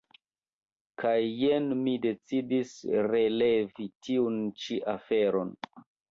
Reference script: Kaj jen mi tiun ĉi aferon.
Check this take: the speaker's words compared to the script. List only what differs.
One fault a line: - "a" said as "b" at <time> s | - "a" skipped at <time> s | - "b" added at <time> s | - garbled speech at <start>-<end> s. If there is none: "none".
- "decidis relevi" added at 2.0 s